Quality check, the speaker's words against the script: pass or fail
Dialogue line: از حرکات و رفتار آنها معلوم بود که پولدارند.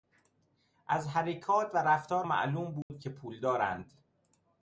fail